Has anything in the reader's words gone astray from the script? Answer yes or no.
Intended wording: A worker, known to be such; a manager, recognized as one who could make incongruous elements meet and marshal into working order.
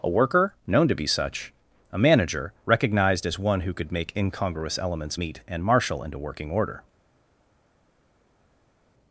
no